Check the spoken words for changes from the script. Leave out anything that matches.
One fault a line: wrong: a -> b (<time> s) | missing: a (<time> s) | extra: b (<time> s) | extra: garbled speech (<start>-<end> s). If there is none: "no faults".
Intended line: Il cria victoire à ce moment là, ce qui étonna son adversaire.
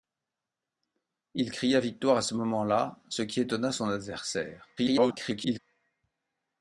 extra: garbled speech (4.8-5.6 s)